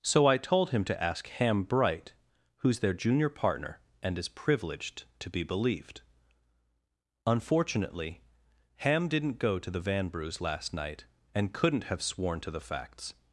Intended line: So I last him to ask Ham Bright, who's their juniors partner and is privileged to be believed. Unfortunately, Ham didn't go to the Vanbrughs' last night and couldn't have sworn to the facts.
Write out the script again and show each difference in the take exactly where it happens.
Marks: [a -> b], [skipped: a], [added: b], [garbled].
So I [last -> told] him to ask Ham Bright, who's their [juniors -> junior] partner and is privileged to be believed. Unfortunately, Ham didn't go to the Vanbrughs' last night and couldn't have sworn to the facts.